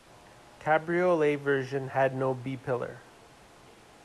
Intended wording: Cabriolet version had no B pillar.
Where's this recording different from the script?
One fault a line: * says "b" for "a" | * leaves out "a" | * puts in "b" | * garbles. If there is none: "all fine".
all fine